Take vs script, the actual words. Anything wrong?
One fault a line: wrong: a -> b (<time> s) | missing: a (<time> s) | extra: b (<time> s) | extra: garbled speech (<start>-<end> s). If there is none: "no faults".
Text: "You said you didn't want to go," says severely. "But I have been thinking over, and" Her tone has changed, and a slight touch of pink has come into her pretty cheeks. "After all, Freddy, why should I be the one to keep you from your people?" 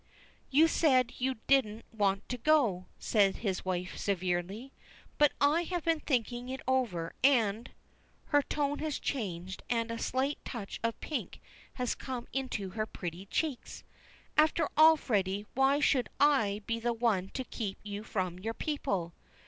extra: his wife (3.4 s)
extra: it (6.5 s)